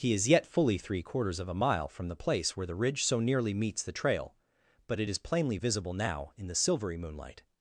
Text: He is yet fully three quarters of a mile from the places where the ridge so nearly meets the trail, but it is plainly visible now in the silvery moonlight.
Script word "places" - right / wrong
wrong